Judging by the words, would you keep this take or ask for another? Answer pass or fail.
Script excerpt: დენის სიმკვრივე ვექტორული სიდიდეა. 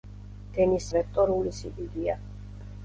fail